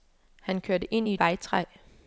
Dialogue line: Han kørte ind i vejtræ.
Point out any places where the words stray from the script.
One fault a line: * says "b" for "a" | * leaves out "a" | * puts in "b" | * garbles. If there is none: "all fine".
all fine